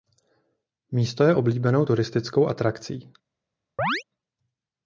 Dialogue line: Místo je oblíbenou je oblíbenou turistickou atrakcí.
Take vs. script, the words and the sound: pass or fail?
fail